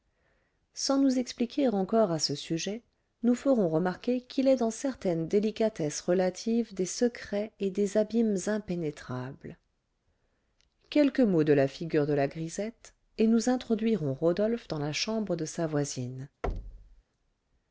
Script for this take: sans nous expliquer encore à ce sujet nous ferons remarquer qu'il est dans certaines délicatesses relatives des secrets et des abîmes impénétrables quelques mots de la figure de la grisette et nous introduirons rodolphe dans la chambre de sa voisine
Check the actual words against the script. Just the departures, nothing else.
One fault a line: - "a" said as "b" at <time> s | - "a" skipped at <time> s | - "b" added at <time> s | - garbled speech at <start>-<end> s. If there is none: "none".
none